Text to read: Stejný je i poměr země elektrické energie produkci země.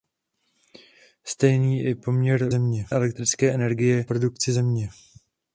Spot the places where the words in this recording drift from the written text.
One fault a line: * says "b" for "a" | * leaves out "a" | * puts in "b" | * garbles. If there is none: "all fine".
all fine